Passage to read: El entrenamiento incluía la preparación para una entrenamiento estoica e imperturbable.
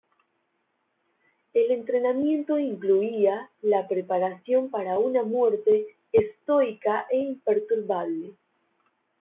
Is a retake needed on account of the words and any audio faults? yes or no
yes